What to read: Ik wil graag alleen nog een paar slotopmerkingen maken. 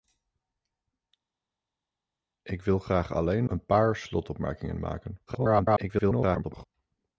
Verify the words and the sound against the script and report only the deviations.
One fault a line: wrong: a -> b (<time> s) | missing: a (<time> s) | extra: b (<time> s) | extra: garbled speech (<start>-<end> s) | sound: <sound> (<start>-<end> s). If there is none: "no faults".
missing: nog (3.4 s)
extra: garbled speech (5.3-6.6 s)